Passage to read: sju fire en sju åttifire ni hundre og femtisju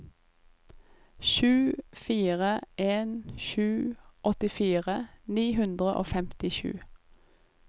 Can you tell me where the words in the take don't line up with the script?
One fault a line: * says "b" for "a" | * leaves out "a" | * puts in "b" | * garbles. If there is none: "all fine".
all fine